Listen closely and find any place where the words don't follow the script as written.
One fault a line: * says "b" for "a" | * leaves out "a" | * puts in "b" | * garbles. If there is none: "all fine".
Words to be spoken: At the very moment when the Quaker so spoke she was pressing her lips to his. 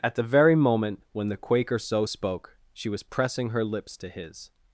all fine